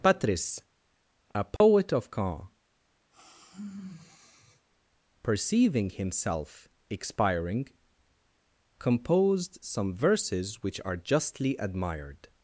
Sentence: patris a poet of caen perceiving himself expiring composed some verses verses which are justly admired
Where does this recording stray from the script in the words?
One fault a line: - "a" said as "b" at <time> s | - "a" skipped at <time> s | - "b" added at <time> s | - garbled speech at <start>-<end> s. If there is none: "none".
- "verses" skipped at 10.6 s